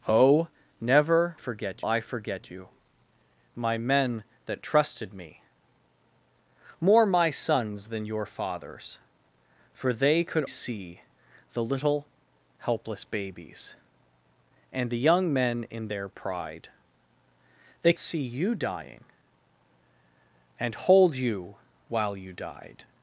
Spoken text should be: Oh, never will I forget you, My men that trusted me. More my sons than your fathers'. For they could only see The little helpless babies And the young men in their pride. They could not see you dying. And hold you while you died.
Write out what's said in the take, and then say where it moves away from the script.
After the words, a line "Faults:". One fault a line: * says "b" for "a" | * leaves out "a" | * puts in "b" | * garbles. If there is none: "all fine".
Oh, never forget I forget you, My men that trusted me. More my sons than your fathers'. For they could see The little helpless babies And the young men in their pride. They see you dying. And hold you while you died.
Faults:
* says "forget" for "will"
* leaves out "only"
* leaves out "could not"